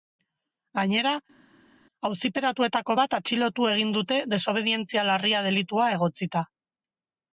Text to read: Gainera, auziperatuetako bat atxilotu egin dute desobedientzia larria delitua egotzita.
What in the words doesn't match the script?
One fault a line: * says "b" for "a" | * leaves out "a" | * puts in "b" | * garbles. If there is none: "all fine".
all fine